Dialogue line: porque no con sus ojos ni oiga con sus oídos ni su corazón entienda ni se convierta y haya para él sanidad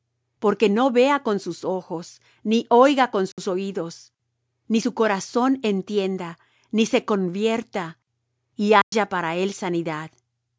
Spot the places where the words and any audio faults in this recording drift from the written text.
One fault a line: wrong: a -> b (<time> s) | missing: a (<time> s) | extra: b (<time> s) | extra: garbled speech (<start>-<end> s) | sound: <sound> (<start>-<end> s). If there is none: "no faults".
extra: vea (0.9 s)
sound: dropout (3.3-3.4 s)
sound: dropout (8.8-8.9 s)